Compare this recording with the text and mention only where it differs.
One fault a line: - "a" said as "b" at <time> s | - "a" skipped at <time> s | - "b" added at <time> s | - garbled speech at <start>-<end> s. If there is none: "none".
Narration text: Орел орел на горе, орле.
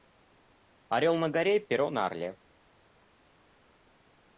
- "орел" skipped at 1.1 s
- "перо на" added at 1.6 s